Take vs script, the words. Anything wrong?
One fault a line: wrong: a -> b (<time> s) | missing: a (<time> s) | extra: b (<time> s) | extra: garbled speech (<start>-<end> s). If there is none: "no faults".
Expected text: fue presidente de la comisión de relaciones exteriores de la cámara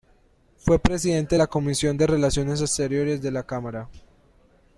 no faults